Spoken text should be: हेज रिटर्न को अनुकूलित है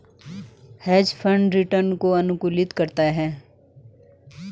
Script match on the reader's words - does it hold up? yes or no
no